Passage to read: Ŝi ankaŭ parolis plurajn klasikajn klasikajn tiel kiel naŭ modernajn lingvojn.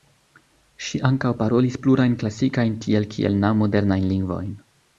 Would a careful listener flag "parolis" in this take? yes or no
no